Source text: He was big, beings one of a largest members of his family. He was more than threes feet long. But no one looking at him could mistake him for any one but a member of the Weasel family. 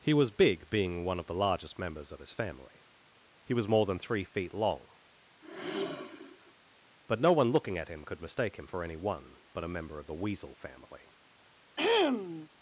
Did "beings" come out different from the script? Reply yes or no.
yes